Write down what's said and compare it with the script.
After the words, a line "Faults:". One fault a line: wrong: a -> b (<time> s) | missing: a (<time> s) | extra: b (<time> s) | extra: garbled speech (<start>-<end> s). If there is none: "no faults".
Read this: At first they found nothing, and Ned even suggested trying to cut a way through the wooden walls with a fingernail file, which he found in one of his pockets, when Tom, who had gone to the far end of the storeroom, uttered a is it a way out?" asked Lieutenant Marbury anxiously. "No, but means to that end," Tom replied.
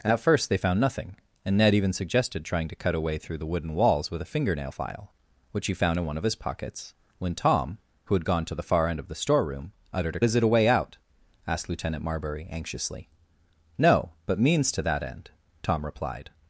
At first they found nothing, and Ned even suggested trying to cut a way through the wooden walls with a fingernail file, which he found in one of his pockets, when Tom, who had gone to the far end of the storeroom, uttered a is it a way out?" asked Lieutenant Marbury anxiously. "No, but means to that end," Tom replied.
Faults:
no faults